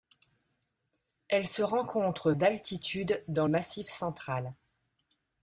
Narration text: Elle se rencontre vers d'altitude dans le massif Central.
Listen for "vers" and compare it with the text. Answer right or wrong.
wrong